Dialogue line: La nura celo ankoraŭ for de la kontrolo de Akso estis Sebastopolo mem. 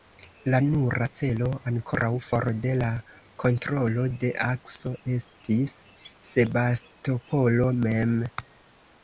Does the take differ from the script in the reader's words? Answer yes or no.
no